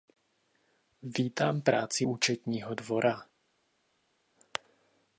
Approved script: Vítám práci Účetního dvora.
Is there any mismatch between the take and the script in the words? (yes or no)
no